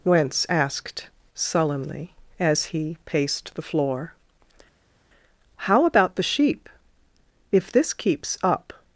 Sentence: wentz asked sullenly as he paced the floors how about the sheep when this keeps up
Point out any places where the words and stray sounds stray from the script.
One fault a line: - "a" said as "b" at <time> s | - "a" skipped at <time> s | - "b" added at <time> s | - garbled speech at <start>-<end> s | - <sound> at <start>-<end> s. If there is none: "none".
- "floors" said as "floor" at 3.6 s
- "when" said as "if" at 7.5 s